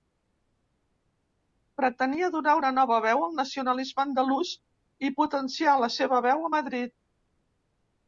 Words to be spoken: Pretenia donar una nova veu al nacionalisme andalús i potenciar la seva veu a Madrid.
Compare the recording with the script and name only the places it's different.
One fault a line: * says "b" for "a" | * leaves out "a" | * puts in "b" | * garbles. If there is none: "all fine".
all fine